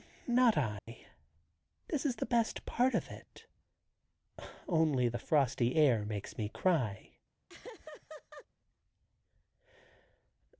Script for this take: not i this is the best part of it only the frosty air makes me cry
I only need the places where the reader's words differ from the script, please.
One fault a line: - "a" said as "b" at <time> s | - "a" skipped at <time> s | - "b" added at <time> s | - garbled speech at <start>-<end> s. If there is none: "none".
none